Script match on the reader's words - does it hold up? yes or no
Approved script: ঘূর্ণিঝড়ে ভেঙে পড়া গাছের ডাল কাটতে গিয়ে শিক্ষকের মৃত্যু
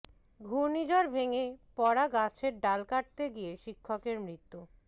yes